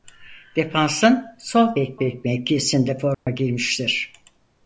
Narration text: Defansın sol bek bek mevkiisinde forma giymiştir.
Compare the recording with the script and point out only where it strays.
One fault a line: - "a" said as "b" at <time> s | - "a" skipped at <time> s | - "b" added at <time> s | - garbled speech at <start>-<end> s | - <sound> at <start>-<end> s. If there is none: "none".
- dropout at 3.1-3.3 s